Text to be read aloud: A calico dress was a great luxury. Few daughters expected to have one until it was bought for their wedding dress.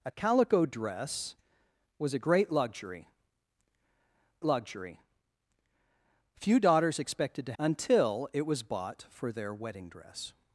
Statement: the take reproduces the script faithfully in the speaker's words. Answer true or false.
false